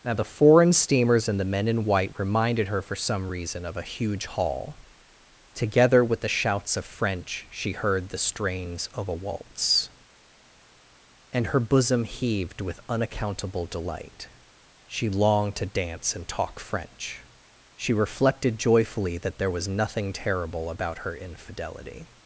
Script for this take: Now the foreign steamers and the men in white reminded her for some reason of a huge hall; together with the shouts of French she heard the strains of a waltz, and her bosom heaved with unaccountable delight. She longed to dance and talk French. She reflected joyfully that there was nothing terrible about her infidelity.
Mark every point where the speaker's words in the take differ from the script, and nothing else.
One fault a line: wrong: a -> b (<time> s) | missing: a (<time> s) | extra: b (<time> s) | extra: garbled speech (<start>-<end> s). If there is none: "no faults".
no faults